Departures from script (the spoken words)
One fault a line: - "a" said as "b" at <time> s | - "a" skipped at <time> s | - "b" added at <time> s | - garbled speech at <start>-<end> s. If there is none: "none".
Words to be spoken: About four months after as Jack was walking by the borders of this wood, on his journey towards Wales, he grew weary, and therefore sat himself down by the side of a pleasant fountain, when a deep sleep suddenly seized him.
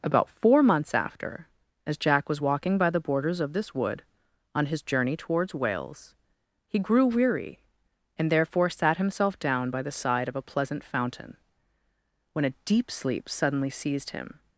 none